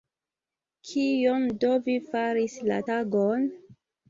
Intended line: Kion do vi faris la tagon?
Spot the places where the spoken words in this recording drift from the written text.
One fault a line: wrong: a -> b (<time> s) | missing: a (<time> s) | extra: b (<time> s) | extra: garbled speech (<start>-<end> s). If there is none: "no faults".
no faults